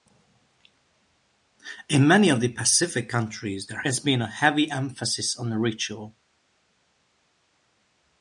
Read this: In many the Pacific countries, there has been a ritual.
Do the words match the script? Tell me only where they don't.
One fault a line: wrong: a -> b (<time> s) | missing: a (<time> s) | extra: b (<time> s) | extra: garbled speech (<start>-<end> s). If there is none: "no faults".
extra: of (2.3 s)
extra: heavy emphasis on (4.3 s)